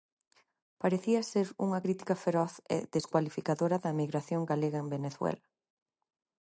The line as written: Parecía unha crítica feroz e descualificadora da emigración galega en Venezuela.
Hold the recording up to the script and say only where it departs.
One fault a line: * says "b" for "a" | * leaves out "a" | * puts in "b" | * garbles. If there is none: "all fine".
* puts in "ser"